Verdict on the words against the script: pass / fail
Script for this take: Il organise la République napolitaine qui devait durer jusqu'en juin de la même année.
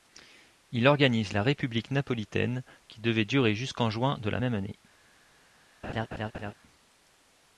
pass